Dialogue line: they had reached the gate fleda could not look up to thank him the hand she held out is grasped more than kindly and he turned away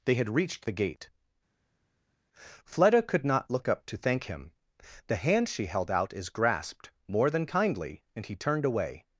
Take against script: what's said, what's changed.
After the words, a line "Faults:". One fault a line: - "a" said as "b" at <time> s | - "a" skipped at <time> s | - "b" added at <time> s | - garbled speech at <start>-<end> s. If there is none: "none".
they had reached the gate fleda could not look up to thank him the hand she held out is grasped more than kindly and he turned away
Faults:
none